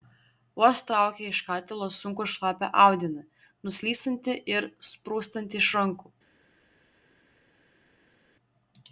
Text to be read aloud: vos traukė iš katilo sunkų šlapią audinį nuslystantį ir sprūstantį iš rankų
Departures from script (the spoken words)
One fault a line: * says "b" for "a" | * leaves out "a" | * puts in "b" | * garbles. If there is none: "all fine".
all fine